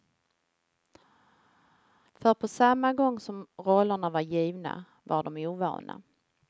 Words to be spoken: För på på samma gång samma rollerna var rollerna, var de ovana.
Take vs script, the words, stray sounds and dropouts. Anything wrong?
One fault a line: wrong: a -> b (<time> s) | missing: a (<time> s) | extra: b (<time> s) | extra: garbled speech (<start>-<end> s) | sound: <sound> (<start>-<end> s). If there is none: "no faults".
missing: på (2.5 s)
wrong: samma -> som (3.2 s)
wrong: rollerna -> givna (4.2 s)